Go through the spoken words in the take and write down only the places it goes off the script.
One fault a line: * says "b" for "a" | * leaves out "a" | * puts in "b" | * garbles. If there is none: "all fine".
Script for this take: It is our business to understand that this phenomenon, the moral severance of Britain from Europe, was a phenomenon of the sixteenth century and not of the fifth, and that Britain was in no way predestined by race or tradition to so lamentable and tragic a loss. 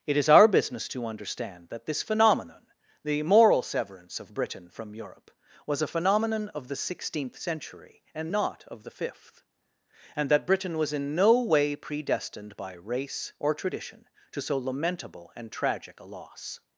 all fine